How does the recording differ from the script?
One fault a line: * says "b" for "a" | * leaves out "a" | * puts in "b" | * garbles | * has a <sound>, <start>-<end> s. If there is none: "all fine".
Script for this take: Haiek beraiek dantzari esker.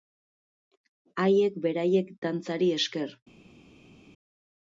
all fine